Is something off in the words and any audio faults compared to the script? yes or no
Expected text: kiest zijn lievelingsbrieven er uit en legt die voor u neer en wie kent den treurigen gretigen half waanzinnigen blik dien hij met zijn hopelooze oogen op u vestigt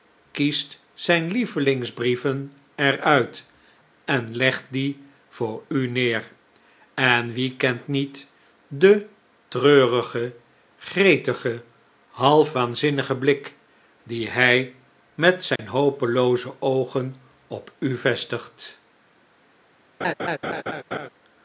yes